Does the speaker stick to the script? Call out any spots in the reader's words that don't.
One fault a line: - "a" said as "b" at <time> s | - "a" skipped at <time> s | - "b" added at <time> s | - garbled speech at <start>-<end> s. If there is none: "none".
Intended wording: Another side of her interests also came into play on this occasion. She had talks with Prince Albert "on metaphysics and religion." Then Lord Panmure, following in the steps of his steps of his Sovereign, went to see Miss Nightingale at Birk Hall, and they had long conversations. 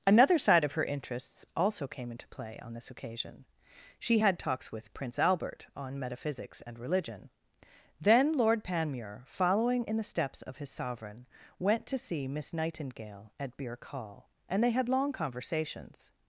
- "steps of his" skipped at 10.7 s